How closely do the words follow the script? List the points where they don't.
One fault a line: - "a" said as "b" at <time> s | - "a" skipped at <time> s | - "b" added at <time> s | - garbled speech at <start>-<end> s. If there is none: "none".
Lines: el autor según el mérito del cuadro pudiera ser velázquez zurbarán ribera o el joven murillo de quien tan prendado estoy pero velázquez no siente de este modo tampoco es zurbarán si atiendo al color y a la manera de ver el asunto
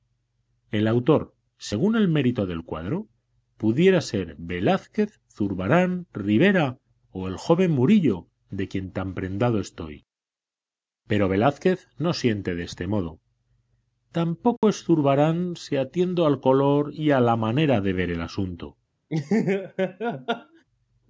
none